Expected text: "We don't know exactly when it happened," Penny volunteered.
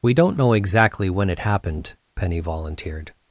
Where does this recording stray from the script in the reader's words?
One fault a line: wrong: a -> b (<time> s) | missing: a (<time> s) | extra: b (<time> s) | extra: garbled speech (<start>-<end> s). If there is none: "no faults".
no faults